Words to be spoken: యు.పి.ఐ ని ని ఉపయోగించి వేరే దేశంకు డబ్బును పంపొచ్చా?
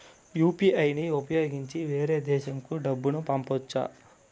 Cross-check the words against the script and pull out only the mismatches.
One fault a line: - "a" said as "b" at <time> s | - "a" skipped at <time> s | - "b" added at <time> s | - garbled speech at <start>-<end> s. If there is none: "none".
- "ని" skipped at 1.1 s